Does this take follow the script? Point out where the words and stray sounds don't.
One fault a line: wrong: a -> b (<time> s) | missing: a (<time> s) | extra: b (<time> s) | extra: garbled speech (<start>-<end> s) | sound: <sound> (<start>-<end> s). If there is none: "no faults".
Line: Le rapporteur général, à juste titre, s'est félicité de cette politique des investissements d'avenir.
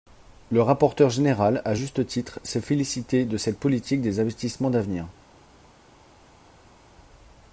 no faults